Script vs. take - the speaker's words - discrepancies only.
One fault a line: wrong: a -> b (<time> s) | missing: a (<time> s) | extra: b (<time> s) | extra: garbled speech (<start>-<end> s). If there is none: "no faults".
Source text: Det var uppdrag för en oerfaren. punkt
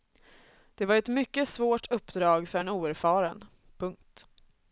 extra: ett mycket svårt (0.9 s)